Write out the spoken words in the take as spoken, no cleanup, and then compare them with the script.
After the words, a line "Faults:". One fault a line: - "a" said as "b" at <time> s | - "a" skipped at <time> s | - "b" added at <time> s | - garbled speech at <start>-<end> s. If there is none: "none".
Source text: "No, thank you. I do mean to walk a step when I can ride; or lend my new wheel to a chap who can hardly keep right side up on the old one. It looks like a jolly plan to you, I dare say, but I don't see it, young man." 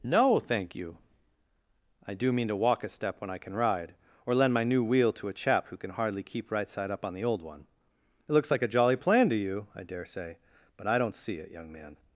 "No, thank you. I do mean to walk a step when I can ride; or lend my new wheel to a chap who can hardly keep right side up on the old one. It looks like a jolly plan to you, I dare say, but I don't see it, young man."
Faults:
none